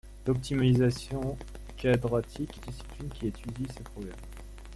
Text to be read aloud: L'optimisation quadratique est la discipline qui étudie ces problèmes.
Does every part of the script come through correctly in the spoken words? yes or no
no